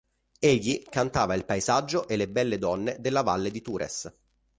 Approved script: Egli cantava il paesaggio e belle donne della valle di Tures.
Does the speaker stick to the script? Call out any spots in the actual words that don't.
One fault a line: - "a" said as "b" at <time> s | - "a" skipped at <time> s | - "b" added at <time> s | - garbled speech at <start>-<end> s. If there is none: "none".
- "le" added at 2.2 s